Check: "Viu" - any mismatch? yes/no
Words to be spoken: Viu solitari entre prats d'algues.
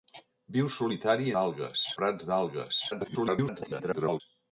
no